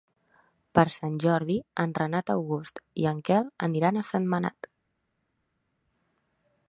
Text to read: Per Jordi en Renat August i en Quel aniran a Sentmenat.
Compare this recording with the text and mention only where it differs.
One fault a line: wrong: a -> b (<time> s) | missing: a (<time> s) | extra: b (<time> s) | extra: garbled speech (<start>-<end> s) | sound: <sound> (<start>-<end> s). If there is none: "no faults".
extra: Sant (0.9 s)